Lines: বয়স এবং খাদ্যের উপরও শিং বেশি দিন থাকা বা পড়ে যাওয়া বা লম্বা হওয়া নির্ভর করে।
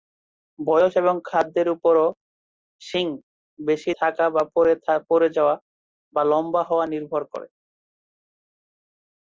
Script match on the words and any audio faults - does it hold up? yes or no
no